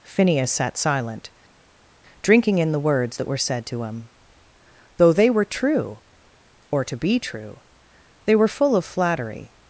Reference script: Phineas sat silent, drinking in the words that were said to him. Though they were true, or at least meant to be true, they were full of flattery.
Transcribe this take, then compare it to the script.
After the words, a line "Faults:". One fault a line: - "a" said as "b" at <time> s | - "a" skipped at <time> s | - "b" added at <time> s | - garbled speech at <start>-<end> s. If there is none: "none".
Phineas sat silent, drinking in the words that were said to him. Though they were true, or to be true, they were full of flattery.
Faults:
- "at least meant" skipped at 6.8 s